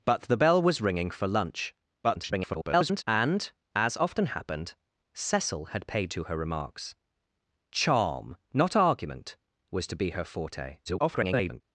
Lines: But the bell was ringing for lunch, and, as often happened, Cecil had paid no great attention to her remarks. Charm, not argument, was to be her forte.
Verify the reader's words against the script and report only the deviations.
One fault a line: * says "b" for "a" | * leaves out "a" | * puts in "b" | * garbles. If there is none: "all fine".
* garbles
* leaves out "no great attention"
* garbles